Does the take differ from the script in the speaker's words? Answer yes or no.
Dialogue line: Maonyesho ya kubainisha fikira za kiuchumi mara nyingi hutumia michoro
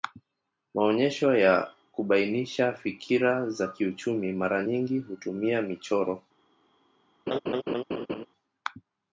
no